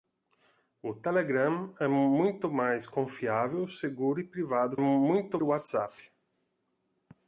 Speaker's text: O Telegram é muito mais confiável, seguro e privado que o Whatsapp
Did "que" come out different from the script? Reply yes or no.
yes